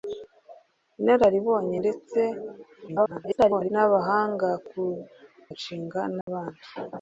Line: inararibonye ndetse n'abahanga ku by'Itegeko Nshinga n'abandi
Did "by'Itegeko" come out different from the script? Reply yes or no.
yes